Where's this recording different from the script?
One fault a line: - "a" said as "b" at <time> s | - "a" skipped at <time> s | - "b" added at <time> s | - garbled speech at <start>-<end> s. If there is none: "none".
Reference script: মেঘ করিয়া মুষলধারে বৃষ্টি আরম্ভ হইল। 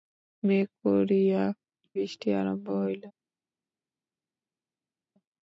- "মুষলধারে" skipped at 1.4 s